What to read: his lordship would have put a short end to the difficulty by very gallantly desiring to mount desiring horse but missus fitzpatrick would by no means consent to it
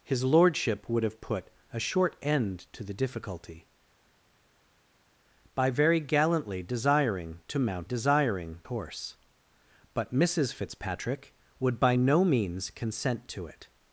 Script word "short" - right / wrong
right